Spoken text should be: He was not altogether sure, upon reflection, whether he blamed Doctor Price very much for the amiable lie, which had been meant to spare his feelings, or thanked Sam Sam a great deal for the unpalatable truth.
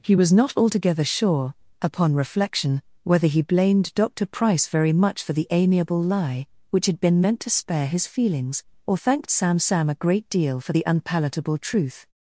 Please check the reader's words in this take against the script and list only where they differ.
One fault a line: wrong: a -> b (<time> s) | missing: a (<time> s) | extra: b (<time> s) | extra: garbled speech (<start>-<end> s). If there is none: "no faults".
no faults